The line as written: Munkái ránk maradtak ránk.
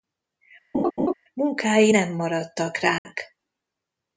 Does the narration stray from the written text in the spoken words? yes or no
yes